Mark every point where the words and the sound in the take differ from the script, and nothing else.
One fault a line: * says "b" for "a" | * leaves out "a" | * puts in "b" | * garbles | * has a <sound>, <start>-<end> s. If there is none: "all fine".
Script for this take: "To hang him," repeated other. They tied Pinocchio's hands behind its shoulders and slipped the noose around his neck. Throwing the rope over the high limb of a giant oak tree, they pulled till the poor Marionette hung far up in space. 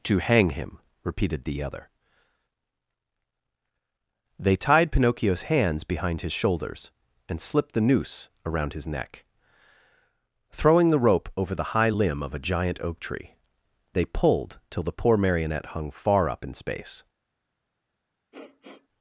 * puts in "the"
* says "his" for "its"
* has a sniff, 18.3-18.9 s